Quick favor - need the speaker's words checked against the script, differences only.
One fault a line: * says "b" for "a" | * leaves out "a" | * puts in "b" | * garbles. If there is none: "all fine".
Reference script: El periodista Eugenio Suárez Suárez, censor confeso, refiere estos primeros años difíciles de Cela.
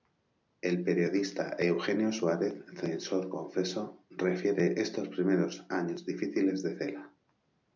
* leaves out "Suárez"